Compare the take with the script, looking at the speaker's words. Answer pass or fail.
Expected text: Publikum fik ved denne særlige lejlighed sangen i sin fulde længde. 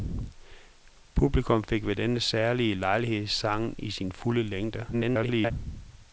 fail